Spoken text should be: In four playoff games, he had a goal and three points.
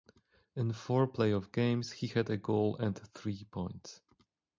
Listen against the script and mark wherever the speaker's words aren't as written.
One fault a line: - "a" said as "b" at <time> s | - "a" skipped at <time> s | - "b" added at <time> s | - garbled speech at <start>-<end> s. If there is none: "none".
none